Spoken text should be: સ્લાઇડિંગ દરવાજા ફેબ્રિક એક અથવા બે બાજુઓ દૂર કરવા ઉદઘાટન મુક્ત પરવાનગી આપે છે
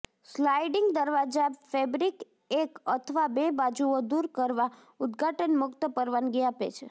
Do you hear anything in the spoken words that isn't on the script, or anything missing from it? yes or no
no